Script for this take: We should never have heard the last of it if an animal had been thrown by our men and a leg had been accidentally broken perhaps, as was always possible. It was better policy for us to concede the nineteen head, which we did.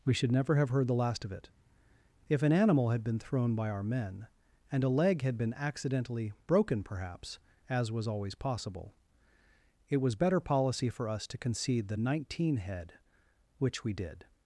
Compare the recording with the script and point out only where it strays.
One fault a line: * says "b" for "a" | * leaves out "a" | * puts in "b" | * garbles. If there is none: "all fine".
all fine